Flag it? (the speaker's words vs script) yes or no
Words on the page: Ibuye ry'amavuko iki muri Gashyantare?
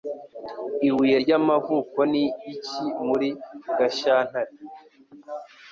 yes